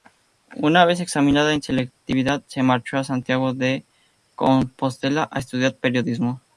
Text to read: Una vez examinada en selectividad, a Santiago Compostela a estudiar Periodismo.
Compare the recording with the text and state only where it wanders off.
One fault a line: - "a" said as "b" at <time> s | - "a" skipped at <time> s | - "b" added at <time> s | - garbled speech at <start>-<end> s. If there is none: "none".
- "se marchó" added at 2.5 s
- "de" added at 3.5 s